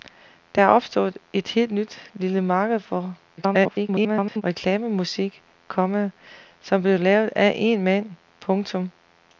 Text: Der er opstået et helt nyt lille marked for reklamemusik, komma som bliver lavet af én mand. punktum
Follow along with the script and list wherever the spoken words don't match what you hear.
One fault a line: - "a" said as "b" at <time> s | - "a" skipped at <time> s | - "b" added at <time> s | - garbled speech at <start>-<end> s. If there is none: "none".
- garbled speech at 3.4-4.4 s